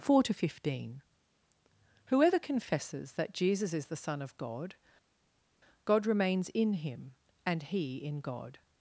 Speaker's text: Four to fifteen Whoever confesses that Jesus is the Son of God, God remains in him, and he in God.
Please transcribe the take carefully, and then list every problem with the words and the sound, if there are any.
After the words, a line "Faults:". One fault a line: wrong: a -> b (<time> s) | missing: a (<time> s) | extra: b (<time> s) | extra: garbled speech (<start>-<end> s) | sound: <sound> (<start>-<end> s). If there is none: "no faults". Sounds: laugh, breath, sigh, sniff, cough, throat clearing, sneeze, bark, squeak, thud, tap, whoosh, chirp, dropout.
Four to fifteen Whoever confesses that Jesus is the Son of God, God remains in him, and he in God.
Faults:
no faults